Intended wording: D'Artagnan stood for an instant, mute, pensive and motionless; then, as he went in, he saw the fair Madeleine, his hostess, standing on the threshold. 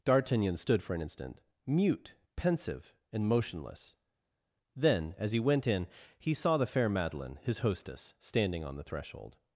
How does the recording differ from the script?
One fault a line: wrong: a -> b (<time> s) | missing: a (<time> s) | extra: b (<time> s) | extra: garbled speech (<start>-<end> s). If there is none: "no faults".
no faults